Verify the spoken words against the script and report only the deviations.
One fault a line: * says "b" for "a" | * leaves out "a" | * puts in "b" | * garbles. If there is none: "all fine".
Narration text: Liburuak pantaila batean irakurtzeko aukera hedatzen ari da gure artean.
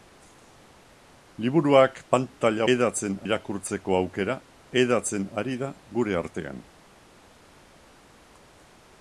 * says "hedatzen" for "batean"